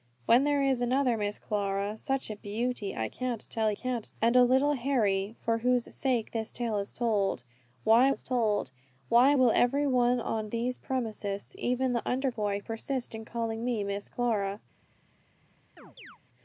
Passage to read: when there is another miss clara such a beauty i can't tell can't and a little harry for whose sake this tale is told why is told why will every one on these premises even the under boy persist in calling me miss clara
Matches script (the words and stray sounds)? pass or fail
fail